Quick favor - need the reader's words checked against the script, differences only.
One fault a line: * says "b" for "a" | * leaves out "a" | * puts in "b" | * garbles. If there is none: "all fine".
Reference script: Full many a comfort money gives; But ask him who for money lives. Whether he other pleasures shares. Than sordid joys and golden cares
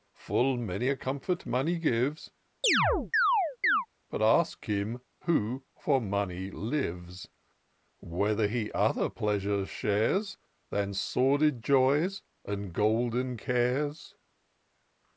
all fine